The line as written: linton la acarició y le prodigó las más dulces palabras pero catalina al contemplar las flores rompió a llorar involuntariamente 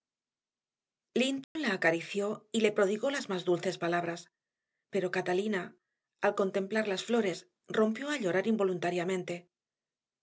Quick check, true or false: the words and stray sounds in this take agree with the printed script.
false